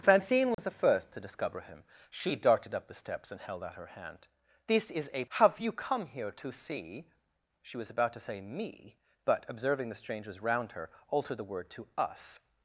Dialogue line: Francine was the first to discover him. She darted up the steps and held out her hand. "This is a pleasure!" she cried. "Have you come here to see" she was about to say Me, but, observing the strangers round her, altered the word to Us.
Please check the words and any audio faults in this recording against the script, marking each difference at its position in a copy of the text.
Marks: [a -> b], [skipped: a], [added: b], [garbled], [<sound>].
Francine was [dropout] the first to discover him. She darted up the steps and held out her hand. "This is a [skipped: pleasure!" she cried.] "Have you come here to see" she was about to say Me, but, observing the strangers round her, altered the word to Us.